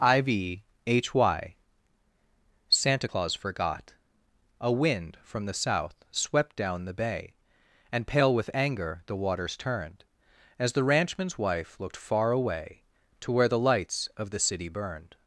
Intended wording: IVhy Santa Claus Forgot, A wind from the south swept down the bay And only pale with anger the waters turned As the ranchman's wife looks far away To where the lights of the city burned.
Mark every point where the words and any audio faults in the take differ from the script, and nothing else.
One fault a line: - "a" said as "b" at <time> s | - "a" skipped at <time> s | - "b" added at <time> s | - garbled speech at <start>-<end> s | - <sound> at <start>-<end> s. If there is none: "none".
- "only" skipped at 8.1 s
- "looks" said as "looked" at 11.8 s